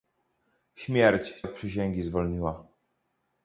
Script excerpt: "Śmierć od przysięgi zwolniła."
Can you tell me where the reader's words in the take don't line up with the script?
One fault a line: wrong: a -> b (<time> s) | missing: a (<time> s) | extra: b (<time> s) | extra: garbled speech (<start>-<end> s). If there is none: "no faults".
no faults